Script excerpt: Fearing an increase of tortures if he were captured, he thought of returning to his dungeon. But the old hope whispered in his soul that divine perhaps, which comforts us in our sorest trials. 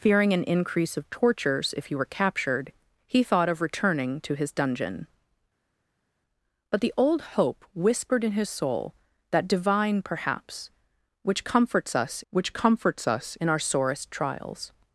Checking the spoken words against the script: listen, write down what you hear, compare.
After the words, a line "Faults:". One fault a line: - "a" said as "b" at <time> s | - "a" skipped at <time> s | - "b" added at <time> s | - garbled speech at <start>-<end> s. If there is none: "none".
Fearing an increase of tortures if he were captured, he thought of returning to his dungeon. But the old hope whispered in his soul that divine perhaps, which comforts us which comforts us in our sorest trials.
Faults:
- "which comforts us" added at 12.3 s